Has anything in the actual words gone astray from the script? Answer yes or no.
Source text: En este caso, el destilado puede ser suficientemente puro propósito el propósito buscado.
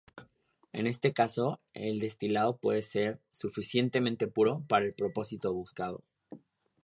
yes